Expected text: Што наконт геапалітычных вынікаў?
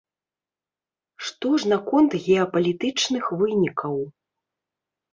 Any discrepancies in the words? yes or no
yes